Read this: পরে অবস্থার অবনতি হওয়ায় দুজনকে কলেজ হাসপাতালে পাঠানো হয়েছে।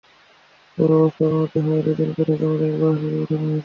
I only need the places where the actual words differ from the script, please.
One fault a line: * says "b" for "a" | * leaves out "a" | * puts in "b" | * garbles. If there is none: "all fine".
* puts in "ঢাকা মেডিকেল"